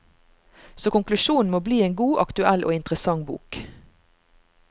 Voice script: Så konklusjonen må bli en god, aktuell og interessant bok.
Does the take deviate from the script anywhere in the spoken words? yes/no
no